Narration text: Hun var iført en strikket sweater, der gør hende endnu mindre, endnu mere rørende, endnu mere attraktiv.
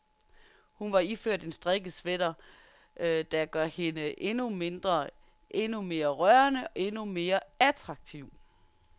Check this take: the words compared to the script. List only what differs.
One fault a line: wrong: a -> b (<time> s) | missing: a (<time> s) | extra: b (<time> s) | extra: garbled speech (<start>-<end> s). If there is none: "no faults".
no faults